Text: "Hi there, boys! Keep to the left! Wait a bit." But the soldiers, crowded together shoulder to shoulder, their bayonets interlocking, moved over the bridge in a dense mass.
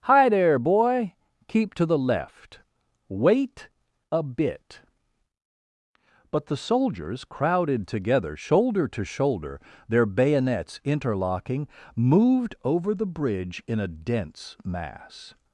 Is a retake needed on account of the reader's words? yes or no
yes